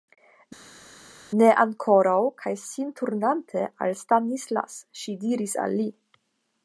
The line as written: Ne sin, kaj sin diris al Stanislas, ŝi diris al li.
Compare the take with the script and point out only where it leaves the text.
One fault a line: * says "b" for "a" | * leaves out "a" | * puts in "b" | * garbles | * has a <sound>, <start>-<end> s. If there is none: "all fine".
* says "ankoraŭ" for "sin"
* says "turnante" for "diris"